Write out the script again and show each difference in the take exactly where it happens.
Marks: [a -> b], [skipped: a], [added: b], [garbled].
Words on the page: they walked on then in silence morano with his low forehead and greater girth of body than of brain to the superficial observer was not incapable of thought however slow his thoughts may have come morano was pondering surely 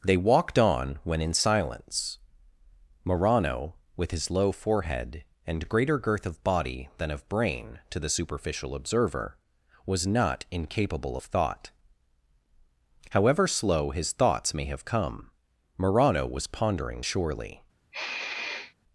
they walked on [then -> when] in silence morano with his low forehead and greater girth of body than of brain to the superficial observer was not incapable of thought however slow his thoughts may have come morano was pondering surely